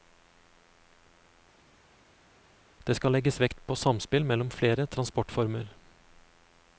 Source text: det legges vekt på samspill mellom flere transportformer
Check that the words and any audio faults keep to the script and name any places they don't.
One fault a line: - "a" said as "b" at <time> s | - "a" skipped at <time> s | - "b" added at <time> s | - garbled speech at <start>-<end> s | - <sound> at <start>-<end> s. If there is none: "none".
- "skal" added at 2.9 s